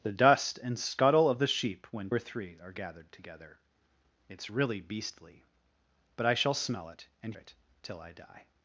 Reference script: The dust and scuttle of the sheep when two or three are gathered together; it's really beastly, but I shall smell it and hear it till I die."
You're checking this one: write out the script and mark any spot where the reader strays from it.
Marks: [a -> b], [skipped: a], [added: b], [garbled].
The dust and scuttle of the sheep when [skipped: two] or three are gathered together; it's really beastly, but I shall smell it and [skipped: hear] it till I die."